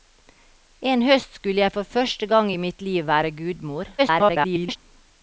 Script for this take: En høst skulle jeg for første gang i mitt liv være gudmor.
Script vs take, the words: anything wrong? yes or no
yes